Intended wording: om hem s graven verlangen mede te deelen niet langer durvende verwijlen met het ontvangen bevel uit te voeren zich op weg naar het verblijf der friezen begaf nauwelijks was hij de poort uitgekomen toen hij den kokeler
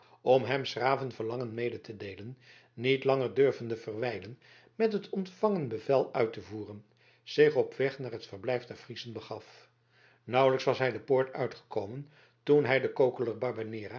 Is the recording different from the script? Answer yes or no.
no